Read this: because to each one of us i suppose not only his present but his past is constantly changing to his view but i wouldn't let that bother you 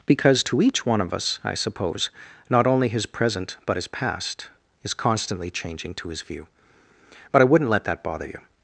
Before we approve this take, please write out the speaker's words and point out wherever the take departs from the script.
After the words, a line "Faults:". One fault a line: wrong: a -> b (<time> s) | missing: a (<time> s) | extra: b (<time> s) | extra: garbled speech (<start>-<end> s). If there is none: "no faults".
because to each one of us i suppose not only his present but his past is constantly changing to his view but i wouldn't let that bother you
Faults:
no faults